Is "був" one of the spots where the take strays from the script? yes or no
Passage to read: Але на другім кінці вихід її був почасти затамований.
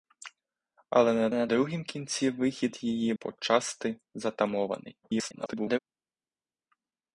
yes